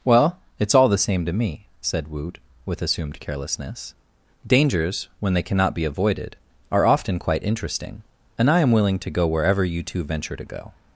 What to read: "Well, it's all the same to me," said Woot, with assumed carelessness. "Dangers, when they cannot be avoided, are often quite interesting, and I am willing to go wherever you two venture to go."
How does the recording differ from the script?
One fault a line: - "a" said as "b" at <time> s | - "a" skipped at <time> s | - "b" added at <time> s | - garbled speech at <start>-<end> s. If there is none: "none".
none